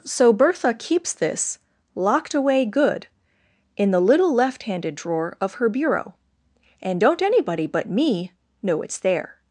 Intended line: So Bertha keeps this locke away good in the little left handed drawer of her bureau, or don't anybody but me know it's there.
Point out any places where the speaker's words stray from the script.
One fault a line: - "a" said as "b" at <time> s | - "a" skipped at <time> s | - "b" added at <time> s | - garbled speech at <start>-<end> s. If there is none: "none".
- "locke" said as "locked" at 1.9 s
- "or" said as "and" at 6.8 s